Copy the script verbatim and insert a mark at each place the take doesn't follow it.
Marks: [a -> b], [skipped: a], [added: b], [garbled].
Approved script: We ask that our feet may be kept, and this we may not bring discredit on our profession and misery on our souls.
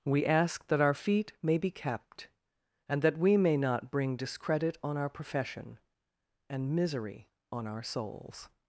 We ask that our feet may be kept, and [this -> that] we may not bring discredit on our profession and misery on our souls.